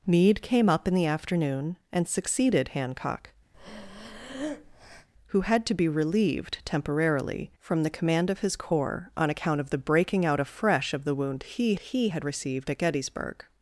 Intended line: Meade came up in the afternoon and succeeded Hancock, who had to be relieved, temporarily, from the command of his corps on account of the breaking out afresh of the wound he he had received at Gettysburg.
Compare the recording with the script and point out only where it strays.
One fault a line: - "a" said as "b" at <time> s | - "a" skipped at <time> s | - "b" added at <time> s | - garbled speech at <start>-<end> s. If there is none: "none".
none